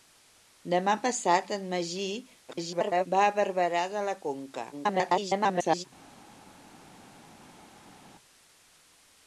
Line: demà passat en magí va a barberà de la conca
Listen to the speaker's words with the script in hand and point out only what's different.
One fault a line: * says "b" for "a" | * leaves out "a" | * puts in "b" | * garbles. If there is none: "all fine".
* garbles
* garbles